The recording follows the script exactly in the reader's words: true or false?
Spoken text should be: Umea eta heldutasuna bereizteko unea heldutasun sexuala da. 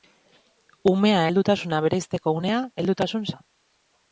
false